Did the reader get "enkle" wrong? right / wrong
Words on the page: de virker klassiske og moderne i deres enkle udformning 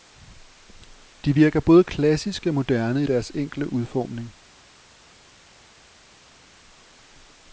right